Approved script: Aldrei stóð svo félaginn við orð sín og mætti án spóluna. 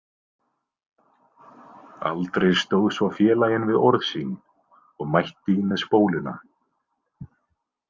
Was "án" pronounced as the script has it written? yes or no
no